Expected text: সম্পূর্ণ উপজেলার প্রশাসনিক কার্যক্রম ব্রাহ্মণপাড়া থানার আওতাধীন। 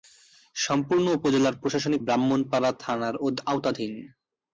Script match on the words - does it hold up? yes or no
no